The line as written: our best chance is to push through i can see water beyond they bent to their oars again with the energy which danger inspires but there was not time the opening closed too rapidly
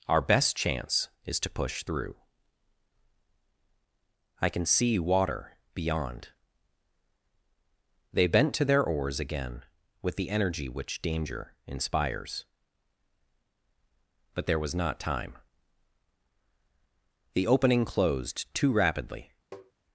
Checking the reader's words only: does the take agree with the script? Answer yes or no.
yes